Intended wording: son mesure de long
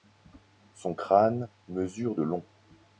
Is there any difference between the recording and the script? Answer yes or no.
yes